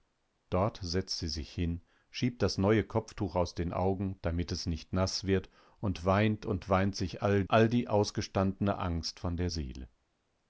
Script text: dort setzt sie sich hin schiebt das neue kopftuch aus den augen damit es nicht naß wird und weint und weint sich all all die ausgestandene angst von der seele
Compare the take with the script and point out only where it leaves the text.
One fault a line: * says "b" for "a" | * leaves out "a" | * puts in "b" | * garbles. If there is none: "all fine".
all fine